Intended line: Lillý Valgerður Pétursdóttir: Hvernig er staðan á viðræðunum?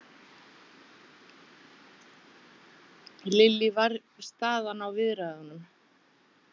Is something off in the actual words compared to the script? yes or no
yes